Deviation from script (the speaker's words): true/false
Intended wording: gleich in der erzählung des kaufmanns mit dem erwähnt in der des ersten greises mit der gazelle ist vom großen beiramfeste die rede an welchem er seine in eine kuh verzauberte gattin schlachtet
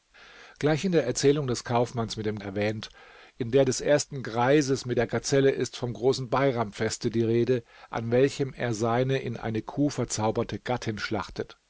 false